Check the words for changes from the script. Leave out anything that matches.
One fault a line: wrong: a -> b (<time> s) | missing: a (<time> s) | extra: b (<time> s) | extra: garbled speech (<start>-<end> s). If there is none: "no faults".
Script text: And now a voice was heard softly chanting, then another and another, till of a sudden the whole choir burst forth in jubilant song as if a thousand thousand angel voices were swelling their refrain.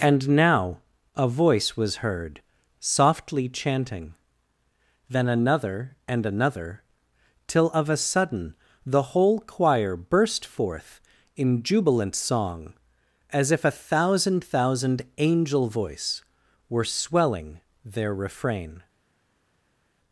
wrong: voices -> voice (15.7 s)